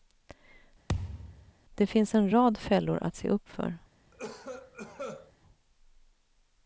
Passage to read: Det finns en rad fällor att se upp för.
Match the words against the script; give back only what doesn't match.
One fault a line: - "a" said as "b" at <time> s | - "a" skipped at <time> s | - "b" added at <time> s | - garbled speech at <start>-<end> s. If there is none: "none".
none